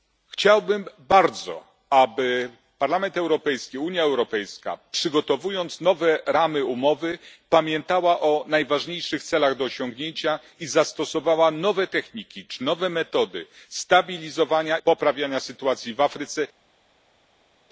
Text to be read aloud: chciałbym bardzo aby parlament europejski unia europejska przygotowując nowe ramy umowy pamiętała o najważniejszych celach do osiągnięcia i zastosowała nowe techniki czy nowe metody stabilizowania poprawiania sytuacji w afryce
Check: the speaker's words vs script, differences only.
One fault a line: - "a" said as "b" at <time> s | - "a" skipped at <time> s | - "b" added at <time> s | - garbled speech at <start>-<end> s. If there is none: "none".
none